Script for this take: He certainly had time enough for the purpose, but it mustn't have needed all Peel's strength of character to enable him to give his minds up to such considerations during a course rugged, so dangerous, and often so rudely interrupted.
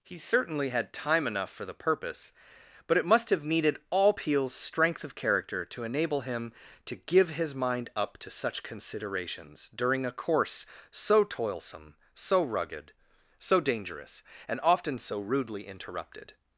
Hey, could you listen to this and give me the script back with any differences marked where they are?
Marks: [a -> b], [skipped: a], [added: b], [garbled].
He certainly had time enough for the purpose, but it [mustn't -> must] have needed all Peel's strength of character to enable him to give his [minds -> mind] up to such considerations during a course [added: so toilsome so] rugged, so dangerous, and often so rudely interrupted.